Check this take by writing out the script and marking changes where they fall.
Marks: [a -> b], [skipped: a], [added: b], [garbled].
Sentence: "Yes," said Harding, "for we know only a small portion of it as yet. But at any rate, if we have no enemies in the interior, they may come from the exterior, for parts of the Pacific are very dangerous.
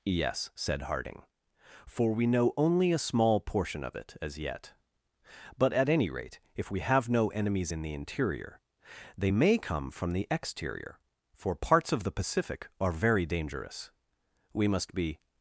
"Yes," said Harding, "for we know only a small portion of it as yet. But at any rate, if we have no enemies in the interior, they may come from the exterior, for parts of the Pacific are very dangerous. [added: We must be]